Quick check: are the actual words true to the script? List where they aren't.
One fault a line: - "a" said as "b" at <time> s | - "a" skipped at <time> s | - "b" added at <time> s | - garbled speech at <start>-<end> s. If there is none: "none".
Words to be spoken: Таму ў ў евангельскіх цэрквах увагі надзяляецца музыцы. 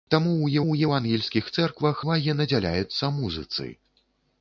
none